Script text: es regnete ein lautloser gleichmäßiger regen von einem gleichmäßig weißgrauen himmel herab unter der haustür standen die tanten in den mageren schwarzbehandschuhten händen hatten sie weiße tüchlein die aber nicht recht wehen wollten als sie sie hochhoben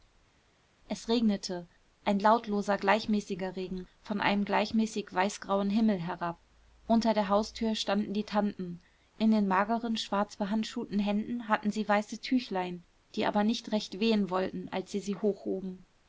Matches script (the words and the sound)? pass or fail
pass